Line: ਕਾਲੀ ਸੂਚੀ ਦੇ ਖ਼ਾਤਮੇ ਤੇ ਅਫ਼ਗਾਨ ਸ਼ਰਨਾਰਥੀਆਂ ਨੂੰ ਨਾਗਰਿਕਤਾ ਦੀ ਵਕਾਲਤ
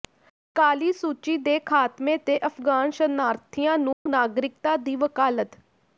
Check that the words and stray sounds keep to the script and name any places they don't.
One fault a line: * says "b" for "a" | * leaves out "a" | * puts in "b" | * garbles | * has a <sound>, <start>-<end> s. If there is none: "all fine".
* has a dropout, 3.9-4.1 s